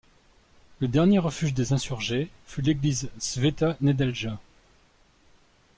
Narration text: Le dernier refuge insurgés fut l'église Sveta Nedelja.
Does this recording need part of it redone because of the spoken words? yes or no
yes